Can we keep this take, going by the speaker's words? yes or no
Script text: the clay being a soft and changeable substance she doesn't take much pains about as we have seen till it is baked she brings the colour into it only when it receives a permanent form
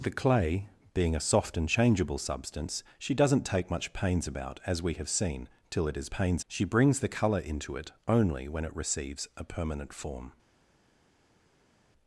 no